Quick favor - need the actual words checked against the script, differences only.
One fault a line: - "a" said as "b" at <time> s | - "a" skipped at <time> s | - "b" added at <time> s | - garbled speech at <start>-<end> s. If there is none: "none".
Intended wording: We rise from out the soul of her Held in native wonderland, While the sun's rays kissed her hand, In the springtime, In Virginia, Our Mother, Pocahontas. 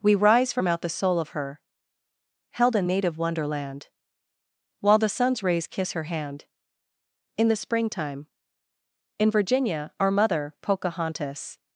- "kissed" said as "kiss" at 5.7 s